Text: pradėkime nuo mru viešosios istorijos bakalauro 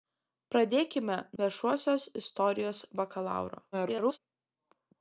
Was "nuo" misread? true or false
true